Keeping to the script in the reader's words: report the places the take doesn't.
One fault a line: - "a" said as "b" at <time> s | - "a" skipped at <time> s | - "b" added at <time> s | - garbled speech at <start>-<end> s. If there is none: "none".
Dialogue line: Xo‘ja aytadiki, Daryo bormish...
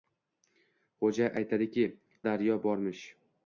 none